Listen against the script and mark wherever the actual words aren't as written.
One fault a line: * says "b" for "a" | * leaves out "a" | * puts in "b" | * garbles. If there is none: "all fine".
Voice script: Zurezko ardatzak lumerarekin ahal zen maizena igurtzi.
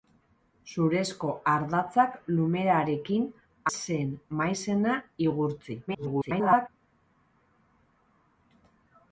* leaves out "ahal"
* garbles